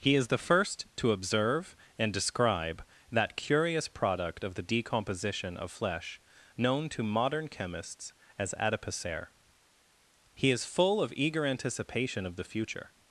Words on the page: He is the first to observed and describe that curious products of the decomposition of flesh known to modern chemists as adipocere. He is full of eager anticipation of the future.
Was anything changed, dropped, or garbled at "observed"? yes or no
yes